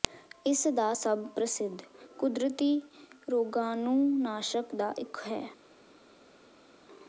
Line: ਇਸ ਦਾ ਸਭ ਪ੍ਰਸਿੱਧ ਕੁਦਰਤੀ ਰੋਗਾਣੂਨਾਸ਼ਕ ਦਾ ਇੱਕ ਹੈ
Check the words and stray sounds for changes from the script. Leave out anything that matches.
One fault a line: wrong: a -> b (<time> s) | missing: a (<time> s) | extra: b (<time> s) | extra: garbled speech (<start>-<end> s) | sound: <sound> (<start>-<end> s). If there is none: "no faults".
no faults